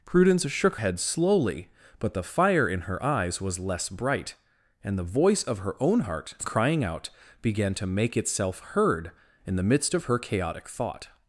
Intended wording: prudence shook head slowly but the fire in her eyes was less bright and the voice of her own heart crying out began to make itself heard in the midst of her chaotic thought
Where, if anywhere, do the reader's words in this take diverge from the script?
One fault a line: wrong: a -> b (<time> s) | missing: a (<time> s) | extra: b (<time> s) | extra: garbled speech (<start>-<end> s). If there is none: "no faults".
no faults